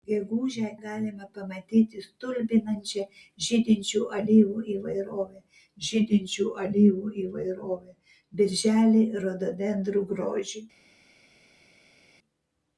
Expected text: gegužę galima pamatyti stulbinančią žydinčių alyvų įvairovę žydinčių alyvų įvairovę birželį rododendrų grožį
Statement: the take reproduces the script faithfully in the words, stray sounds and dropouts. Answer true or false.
true